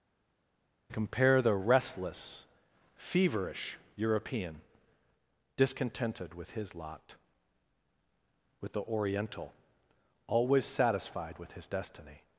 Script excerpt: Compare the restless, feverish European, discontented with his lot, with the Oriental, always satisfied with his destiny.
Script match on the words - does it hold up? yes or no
yes